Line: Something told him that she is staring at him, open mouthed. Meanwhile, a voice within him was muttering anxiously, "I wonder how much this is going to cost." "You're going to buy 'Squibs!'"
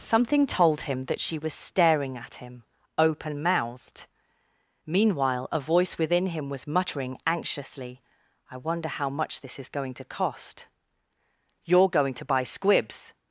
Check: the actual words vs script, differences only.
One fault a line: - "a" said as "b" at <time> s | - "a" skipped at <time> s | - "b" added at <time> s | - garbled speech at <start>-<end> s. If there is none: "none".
- "is" said as "was" at 1.4 s